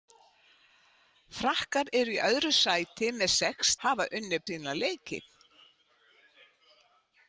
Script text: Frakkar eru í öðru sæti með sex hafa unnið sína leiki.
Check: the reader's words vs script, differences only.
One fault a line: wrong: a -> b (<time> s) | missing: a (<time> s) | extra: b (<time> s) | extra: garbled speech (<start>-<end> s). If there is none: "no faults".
no faults